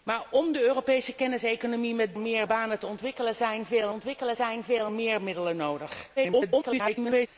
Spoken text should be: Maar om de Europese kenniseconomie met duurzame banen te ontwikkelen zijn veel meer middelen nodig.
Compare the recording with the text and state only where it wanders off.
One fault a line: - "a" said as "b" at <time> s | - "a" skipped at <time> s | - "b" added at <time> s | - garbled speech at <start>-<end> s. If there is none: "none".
- "duurzame" said as "meer" at 2.2 s
- "ontwikkelen zijn veel" added at 3.9 s
- garbled speech at 6.2-7.3 s